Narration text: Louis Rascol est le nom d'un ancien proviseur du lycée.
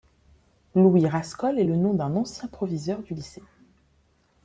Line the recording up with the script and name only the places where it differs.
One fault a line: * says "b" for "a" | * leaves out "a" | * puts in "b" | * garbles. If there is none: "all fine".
all fine